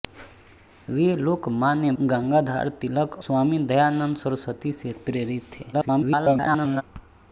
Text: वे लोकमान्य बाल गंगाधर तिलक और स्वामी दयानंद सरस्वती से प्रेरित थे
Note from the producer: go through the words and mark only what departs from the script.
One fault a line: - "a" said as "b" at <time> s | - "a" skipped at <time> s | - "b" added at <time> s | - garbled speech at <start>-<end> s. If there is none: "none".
- "बाल" skipped at 1.9 s
- "और" skipped at 3.2 s
- garbled speech at 5.7-6.8 s